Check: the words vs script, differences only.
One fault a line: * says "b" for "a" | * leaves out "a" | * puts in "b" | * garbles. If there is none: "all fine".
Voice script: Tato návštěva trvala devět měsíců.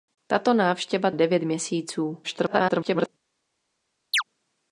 * leaves out "trvala"
* garbles